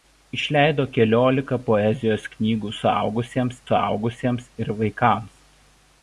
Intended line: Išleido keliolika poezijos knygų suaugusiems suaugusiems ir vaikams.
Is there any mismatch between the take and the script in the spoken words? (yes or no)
no